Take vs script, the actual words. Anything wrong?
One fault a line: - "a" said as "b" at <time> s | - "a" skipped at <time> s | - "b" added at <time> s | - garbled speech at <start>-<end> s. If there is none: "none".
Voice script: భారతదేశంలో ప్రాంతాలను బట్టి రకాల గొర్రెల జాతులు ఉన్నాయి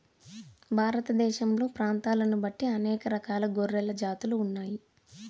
- "అనేక" added at 2.7 s